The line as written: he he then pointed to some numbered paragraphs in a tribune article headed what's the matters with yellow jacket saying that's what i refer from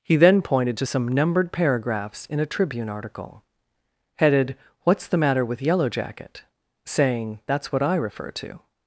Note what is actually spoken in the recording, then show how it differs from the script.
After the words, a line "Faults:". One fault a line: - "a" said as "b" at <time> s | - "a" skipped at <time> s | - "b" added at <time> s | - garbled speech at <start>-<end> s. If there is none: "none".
he then pointed to some numbered paragraphs in a tribune article headed what's the matter with yellow jacket saying that's what i refer to
Faults:
- "he" skipped at 0.1 s
- "matters" said as "matter" at 5.2 s
- "from" said as "to" at 8.3 s